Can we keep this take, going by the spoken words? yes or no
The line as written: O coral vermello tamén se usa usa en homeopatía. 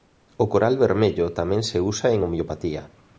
no